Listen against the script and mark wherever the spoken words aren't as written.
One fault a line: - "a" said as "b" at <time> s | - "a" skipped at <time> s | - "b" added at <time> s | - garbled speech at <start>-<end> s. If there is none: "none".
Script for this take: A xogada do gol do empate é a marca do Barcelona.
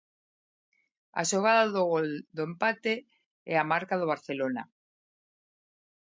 none